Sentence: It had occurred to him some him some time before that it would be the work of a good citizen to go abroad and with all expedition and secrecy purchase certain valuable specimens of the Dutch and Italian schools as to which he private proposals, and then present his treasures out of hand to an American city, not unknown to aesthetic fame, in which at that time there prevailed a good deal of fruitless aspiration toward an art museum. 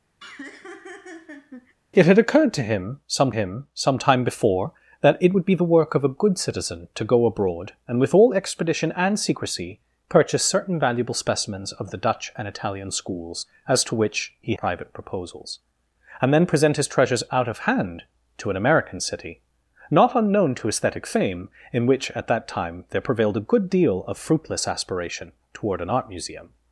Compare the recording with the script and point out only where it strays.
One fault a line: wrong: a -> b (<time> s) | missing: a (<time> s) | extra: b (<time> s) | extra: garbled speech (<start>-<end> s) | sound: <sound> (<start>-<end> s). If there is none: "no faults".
sound: laugh (0.2-1.7 s)